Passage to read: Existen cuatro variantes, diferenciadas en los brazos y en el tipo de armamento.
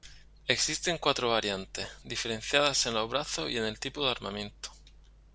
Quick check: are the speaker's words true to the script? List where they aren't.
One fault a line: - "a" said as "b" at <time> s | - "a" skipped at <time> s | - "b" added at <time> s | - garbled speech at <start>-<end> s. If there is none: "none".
none